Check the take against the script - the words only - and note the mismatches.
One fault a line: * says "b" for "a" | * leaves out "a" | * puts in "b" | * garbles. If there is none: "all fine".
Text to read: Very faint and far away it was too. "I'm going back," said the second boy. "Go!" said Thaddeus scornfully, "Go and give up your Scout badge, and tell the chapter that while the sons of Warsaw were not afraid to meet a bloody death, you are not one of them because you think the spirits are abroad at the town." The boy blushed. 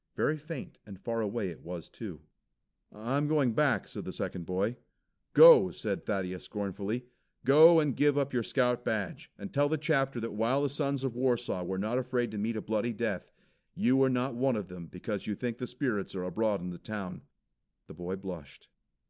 * says "in" for "at"